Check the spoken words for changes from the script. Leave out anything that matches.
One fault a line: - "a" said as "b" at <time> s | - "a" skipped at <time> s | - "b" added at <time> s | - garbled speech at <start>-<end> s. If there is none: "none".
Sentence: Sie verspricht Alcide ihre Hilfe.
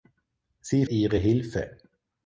- "verspricht Alcide" skipped at 0.9 s